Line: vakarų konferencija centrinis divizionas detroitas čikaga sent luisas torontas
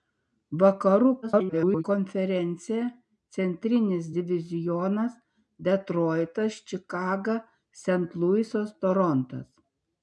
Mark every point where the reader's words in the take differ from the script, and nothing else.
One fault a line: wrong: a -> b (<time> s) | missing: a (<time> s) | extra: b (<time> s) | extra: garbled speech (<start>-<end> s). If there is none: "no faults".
extra: garbled speech (1.2-1.8 s)